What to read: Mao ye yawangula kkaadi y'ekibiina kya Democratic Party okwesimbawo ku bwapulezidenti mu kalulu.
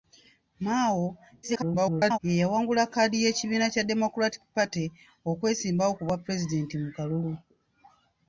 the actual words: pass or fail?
fail